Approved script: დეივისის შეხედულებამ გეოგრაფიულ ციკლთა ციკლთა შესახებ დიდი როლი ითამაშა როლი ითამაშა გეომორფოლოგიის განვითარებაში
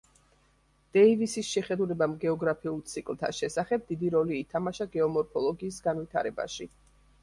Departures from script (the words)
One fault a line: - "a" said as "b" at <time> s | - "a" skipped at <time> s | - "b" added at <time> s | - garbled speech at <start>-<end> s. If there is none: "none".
- "ციკლთა" skipped at 3.3 s
- "როლი ითამაშა" skipped at 4.9 s